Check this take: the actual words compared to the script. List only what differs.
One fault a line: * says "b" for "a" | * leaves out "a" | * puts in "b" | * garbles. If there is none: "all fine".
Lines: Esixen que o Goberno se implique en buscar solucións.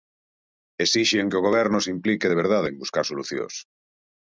* puts in "de verdade"